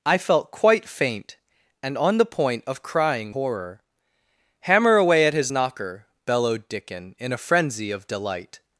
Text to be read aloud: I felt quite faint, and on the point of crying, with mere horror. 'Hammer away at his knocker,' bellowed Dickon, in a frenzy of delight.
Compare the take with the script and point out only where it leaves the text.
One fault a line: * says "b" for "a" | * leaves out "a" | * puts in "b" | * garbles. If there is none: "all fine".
* leaves out "with mere"